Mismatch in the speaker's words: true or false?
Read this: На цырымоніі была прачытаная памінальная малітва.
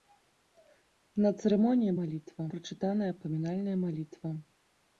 true